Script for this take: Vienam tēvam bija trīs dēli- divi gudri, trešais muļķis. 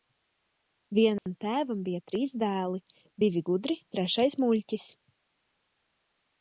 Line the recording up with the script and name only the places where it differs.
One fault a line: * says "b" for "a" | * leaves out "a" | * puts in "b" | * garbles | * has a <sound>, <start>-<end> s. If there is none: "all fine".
* has a dropout, 1.2-1.3 s